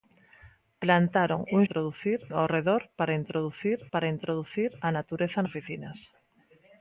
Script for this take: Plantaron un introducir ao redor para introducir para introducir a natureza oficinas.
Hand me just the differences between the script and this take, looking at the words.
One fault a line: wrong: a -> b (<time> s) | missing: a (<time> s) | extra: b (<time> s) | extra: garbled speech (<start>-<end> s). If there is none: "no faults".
no faults